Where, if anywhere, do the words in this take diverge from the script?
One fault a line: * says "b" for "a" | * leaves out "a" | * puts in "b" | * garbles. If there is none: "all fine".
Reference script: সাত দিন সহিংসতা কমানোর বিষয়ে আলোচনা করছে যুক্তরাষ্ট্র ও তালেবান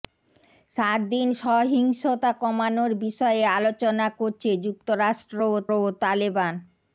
* puts in "ও"